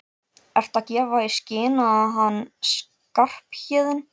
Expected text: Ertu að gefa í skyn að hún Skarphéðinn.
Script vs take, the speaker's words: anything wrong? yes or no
yes